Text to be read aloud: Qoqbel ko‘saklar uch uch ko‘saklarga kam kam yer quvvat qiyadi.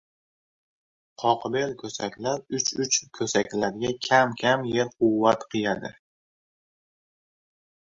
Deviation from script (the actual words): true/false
false